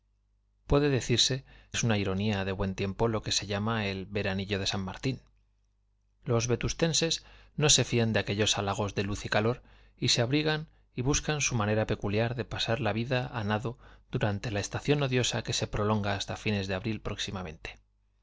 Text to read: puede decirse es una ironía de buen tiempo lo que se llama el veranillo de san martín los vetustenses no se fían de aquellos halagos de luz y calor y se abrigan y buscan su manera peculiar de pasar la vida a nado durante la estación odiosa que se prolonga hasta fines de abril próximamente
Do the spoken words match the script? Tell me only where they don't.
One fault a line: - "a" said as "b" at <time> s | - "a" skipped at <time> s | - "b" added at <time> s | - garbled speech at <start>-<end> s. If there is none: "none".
none